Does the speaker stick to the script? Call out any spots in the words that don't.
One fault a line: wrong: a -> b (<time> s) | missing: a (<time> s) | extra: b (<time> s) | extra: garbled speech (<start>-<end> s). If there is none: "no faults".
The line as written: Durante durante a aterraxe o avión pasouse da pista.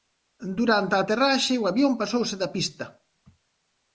missing: durante (0.9 s)